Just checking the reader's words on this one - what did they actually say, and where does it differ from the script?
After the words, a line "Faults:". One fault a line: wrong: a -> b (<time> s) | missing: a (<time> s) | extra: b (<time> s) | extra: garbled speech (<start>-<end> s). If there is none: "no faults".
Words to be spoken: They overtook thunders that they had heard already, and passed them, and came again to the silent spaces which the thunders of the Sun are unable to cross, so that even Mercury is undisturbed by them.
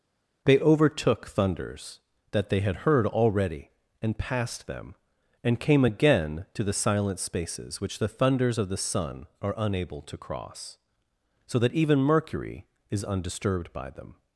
They overtook thunders that they had heard already, and passed them, and came again to the silent spaces which the thunders of the Sun are unable to cross, so that even Mercury is undisturbed by them.
Faults:
no faults